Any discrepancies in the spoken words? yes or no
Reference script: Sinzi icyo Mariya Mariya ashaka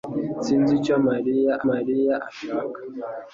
no